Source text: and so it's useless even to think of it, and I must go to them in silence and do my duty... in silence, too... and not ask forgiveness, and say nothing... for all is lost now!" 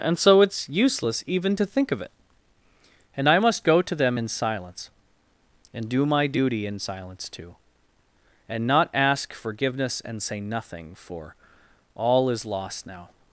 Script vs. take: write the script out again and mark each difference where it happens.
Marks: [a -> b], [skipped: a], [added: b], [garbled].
and so it's useless even to think of it, and I must go to them in silence and do my duty... in silence, too... and not ask forgiveness, and say nothing... for all is lost now!"